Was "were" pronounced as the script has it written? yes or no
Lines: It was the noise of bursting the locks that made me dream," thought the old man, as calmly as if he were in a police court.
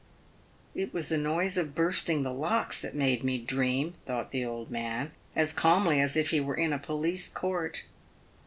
yes